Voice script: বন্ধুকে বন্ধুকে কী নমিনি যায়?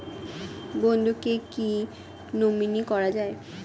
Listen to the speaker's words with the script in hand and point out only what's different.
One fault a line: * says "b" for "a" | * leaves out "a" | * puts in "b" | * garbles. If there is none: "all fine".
* leaves out "বন্ধুকে"
* puts in "করা"